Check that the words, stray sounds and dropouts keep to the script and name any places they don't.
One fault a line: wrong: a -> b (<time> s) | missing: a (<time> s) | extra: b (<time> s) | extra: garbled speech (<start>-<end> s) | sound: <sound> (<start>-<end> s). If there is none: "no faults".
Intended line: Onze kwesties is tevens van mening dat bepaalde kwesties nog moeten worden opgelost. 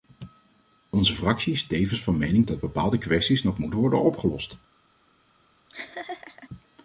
wrong: kwesties -> fractie (1.1 s)
sound: laugh (5.7-6.5 s)